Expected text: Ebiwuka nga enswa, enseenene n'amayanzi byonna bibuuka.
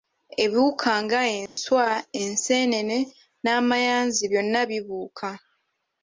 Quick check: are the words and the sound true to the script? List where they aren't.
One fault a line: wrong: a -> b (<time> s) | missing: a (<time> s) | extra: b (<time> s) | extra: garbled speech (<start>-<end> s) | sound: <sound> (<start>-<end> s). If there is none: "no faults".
sound: dropout (1.5-1.6 s)